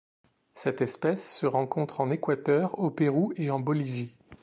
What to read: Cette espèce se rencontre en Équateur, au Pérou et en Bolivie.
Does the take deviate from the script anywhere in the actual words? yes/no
no